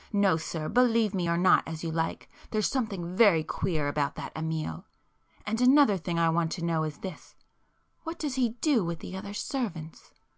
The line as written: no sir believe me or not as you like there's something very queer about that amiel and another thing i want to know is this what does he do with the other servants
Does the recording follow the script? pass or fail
pass